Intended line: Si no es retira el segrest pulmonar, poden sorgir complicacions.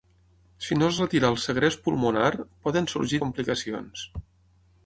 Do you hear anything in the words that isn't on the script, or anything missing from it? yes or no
no